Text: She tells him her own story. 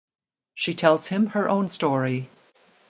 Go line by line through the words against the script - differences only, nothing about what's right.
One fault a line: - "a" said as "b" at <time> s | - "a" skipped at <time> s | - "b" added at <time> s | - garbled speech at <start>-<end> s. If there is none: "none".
none